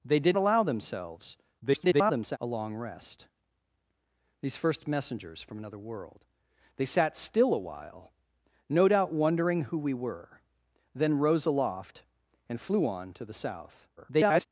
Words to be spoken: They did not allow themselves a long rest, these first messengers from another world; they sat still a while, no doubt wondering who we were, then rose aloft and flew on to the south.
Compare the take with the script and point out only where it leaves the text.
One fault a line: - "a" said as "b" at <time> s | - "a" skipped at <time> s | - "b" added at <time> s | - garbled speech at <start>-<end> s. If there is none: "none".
- "not" skipped at 0.4 s
- garbled speech at 1.6-2.4 s
- garbled speech at 14.0-14.5 s